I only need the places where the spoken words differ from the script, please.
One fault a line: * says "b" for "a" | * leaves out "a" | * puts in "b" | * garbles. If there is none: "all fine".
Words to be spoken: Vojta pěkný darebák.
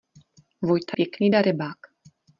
all fine